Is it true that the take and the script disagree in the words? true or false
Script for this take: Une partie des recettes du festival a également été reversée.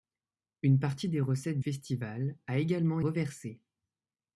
true